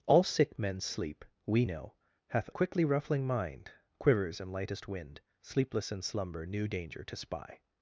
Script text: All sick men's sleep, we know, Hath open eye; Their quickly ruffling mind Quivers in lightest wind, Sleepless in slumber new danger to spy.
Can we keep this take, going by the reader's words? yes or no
no